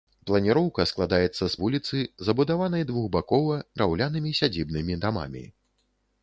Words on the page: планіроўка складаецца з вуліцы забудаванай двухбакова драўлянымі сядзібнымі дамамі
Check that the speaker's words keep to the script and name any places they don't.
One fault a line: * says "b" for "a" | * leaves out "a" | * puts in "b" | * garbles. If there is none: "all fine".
all fine